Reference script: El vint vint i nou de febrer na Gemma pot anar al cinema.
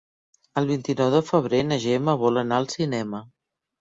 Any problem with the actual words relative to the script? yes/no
yes